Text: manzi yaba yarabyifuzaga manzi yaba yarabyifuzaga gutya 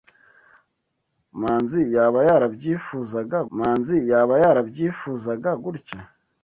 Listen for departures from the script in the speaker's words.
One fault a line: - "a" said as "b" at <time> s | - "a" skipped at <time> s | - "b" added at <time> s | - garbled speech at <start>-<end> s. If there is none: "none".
none